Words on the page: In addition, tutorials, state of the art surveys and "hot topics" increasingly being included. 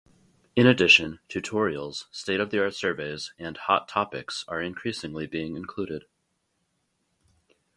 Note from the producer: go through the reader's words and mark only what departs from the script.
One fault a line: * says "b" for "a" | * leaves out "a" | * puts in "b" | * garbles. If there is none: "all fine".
* puts in "are"